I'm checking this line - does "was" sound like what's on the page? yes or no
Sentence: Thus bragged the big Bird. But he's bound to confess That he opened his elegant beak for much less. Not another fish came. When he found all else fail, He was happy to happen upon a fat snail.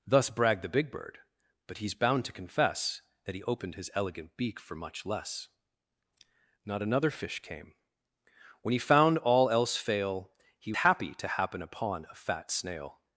no